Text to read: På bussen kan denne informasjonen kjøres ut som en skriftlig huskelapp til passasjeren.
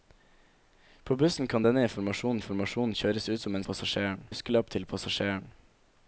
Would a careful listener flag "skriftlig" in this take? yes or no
yes